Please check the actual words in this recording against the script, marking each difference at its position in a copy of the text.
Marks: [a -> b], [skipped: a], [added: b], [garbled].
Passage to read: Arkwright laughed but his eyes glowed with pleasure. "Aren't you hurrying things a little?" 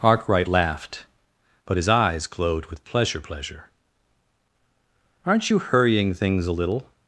Arkwright laughed but his eyes glowed with pleasure. [added: pleasure] "Aren't you hurrying things a little?"